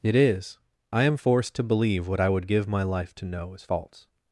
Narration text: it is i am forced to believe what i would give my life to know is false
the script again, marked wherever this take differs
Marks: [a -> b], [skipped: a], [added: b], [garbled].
it is i am forced to believe what i would give my life to know is false